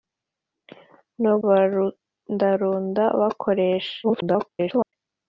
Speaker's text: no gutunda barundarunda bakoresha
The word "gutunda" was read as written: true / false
false